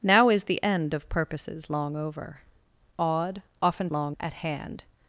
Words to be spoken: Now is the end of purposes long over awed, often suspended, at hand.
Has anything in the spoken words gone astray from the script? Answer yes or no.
yes